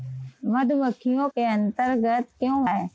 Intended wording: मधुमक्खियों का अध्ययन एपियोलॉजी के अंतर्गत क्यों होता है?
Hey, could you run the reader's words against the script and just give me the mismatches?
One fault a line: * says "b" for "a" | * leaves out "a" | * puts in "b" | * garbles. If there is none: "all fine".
* leaves out "का अध्ययन एपियोलॉजी"
* leaves out "होता"